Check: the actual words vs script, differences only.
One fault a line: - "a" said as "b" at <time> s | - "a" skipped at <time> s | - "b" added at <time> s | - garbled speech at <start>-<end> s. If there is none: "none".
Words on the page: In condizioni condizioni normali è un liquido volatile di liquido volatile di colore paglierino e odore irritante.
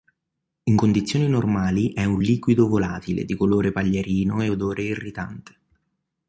- "condizioni" skipped at 1.3 s
- "liquido volatile di" skipped at 3.3 s